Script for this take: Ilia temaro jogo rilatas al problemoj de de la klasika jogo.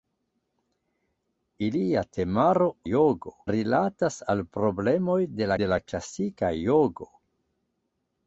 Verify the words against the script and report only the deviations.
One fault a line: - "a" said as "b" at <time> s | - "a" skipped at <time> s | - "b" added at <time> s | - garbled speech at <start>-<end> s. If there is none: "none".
none